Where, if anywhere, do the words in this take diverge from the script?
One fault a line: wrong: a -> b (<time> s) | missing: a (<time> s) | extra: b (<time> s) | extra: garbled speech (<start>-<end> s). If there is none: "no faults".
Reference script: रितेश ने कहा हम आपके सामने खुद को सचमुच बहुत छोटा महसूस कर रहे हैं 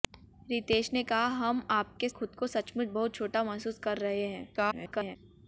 missing: सामने (2.1 s)
extra: garbled speech (4.6-5.2 s)